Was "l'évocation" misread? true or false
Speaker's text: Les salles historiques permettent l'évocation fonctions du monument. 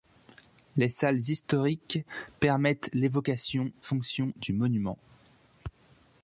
false